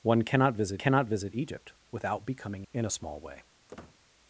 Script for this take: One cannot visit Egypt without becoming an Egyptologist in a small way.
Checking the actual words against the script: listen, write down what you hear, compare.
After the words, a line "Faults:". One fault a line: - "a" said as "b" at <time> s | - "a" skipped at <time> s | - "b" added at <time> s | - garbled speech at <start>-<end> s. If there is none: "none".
One cannot visit cannot visit Egypt without becoming in a small way.
Faults:
- "cannot visit" added at 0.8 s
- "an Egyptologist" skipped at 2.7 s